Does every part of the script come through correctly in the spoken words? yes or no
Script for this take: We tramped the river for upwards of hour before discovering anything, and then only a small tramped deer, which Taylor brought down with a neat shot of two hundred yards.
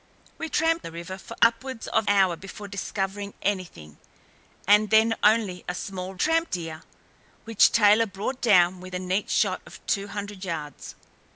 yes